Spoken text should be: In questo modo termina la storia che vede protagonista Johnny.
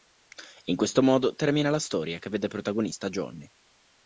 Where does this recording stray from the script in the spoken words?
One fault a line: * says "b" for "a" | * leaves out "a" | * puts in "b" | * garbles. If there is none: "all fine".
all fine